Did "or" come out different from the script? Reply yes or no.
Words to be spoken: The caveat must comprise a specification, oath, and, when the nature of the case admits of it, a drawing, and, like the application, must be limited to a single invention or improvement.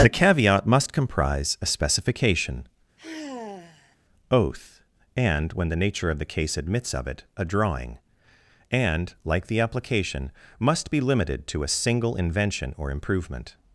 no